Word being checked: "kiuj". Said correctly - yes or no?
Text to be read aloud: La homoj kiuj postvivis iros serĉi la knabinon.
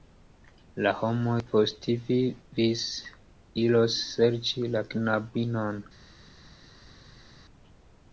no